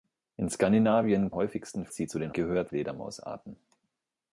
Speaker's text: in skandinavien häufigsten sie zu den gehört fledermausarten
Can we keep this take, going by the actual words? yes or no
yes